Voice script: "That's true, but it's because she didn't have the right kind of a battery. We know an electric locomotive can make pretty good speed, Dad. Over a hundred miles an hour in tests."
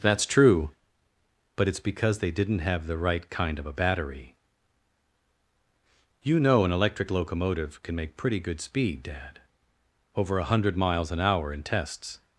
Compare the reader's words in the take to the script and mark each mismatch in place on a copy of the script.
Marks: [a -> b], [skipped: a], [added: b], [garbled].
"That's true, but it's because [she -> they] didn't have the right kind of a battery. [We -> You] know an electric locomotive can make pretty good speed, Dad. Over a hundred miles an hour in tests."